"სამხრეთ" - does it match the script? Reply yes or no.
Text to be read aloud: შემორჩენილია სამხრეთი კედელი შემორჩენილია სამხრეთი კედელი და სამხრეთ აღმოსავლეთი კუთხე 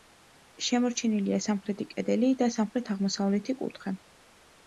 yes